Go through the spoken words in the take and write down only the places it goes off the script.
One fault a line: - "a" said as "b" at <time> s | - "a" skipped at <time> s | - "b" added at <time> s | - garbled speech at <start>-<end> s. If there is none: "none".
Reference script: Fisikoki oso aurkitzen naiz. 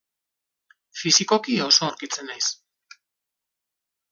none